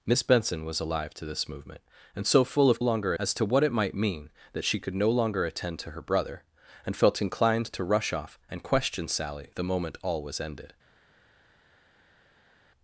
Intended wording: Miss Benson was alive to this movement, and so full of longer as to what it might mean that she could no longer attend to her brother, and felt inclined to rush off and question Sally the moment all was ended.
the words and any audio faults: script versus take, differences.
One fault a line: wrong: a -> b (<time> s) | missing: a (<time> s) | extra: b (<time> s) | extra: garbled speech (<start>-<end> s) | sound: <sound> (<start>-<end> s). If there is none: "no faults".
no faults